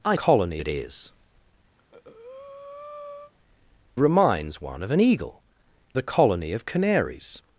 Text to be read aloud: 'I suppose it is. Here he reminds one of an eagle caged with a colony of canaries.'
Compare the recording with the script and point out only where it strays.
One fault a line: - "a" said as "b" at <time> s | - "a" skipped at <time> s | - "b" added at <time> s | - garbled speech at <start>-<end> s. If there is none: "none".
- "suppose" said as "colony" at 0.1 s
- "Here he" skipped at 1.1 s
- "caged with" skipped at 5.4 s